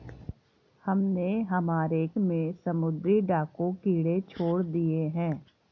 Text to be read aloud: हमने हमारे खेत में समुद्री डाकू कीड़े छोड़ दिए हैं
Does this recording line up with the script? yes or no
no